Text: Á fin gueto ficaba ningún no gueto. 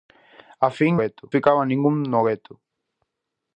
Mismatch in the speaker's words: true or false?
false